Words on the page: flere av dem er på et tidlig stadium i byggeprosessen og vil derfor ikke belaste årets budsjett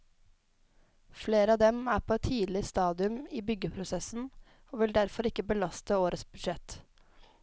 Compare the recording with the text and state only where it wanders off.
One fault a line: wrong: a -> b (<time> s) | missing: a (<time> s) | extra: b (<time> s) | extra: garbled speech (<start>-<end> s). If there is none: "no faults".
no faults